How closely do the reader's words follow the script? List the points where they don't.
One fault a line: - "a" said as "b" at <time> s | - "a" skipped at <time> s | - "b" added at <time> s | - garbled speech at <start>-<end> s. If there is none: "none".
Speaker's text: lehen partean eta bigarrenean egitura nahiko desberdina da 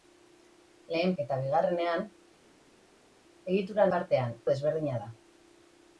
- "partean" skipped at 1.1 s
- "nahiko" said as "partean" at 3.9 s